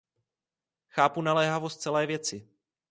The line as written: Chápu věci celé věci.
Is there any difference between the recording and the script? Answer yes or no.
yes